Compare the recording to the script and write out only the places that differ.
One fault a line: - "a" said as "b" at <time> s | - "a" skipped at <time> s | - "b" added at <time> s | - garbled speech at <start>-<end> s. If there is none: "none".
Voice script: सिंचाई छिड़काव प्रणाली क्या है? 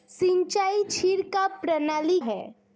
- "क्या" skipped at 2.2 s